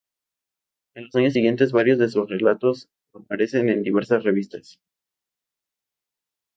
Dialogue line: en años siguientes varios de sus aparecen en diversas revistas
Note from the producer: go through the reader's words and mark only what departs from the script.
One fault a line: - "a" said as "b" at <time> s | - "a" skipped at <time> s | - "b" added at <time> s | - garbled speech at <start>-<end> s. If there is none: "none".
- "los" added at 1.0 s
- "relatos" added at 2.3 s